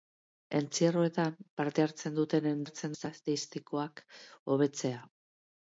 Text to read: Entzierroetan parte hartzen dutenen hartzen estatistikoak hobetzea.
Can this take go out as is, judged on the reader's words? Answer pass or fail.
pass